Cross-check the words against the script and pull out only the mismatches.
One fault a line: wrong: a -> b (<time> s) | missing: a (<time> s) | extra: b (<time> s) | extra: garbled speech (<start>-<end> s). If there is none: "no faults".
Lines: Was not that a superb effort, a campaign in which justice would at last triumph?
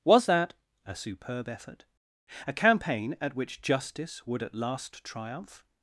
missing: not (0.3 s)
wrong: in -> at (3.2 s)